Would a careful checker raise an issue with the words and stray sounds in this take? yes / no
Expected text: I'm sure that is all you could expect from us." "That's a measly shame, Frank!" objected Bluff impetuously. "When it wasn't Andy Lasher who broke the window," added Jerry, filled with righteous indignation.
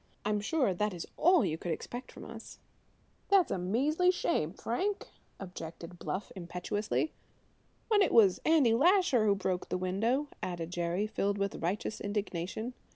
yes